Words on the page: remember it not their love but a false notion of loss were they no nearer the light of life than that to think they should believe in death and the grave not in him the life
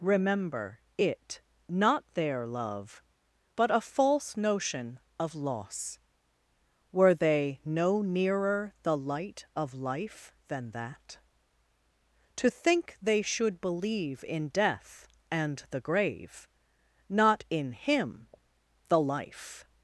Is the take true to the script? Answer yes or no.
yes